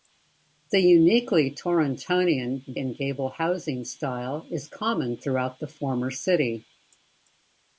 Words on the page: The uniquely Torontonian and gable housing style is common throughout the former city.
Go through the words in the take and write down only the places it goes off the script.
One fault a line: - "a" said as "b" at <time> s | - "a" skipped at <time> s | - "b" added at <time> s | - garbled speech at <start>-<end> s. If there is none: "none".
none